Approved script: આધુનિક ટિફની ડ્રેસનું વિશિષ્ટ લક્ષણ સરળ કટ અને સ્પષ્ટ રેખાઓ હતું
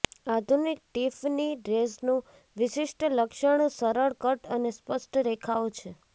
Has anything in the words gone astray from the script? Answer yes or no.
yes